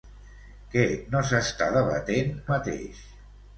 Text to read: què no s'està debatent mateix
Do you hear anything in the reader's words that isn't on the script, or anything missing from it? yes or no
no